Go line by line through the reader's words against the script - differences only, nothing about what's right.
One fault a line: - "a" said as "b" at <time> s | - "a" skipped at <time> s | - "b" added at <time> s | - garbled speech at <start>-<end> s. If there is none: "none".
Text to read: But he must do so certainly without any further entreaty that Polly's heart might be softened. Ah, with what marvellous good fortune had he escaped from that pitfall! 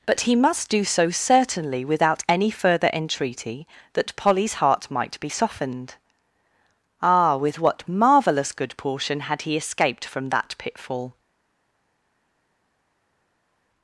- "fortune" said as "portion" at 8.8 s